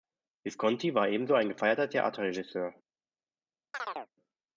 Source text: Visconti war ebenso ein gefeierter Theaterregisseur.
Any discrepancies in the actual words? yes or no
no